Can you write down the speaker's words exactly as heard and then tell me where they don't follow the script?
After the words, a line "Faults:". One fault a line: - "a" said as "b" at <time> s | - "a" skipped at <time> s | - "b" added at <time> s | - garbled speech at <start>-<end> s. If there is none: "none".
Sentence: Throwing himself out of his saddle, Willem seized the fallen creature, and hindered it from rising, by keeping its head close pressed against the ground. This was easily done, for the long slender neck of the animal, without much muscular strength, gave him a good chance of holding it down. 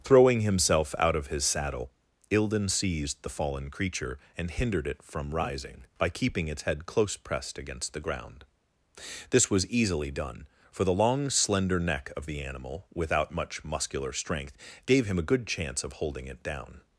Throwing himself out of his saddle, Ilden seized the fallen creature, and hindered it from rising, by keeping its head close pressed against the ground. This was easily done, for the long slender neck of the animal, without much muscular strength, gave him a good chance of holding it down.
Faults:
- "Willem" said as "Ilden" at 2.3 s